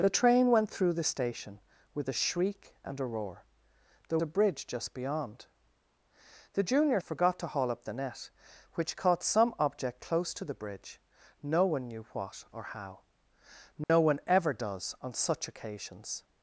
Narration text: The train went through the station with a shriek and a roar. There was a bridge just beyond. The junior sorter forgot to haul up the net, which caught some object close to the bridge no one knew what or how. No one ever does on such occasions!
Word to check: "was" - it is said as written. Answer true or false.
false